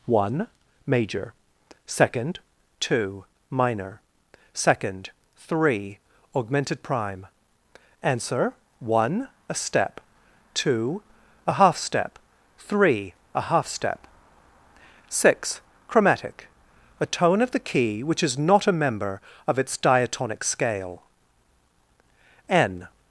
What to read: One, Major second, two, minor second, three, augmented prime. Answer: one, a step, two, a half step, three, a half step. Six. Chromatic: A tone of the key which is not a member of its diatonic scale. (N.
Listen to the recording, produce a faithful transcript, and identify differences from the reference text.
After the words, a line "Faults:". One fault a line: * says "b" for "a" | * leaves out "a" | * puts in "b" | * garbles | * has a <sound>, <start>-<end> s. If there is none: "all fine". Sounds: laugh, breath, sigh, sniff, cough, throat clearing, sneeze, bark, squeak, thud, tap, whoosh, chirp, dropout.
One, Major second, two, minor second, three, augmented prime. Answer: one, a step, two, a half step, three, a half step. Six. Chromatic: A tone of the key which is not a member of its diatonic scale. (N.
Faults:
all fine